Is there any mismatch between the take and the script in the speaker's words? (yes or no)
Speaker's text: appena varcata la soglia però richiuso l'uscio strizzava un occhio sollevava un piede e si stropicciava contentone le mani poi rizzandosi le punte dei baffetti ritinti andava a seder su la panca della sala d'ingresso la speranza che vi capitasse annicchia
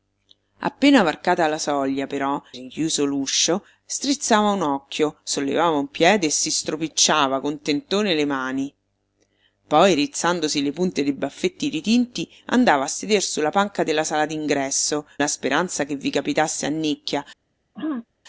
no